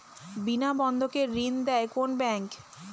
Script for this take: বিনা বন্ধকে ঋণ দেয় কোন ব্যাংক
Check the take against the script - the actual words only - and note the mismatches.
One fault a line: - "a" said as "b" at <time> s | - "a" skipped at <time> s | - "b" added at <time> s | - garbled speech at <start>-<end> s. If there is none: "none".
none